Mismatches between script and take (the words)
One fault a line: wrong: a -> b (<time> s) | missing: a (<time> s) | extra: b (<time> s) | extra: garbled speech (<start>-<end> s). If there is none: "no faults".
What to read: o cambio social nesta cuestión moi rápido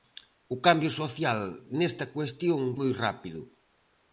no faults